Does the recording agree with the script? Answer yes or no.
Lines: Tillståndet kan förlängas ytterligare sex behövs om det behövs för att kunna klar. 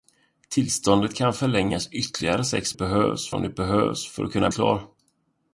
yes